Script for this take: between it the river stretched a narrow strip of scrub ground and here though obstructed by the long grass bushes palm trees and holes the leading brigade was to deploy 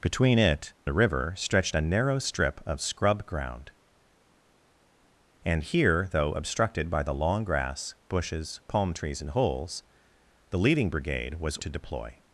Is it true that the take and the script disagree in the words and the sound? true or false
false